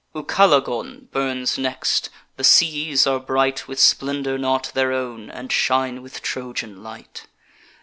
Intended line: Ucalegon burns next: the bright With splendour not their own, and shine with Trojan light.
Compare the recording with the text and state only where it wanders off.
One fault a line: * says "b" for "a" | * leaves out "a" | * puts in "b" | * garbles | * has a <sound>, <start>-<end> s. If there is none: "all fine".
* puts in "seas are"